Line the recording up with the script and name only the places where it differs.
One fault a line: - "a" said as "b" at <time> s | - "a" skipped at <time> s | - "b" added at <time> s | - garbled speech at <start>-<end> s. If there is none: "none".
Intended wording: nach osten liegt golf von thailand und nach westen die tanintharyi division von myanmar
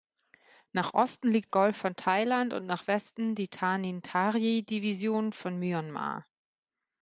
none